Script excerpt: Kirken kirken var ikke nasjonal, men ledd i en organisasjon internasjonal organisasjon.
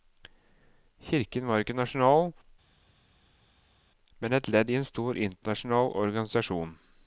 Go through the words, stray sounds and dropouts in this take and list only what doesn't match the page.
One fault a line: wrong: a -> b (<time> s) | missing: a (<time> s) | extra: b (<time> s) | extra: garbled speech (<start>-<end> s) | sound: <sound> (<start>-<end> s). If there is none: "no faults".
missing: kirken (1.5 s)
extra: et (4.3 s)
wrong: organisasjon -> stor (4.9 s)